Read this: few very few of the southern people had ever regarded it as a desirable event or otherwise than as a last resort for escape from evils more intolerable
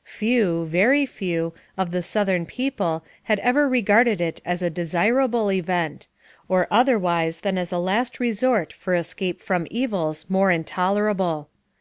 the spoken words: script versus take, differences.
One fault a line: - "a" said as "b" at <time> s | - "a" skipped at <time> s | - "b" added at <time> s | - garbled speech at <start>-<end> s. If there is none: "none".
none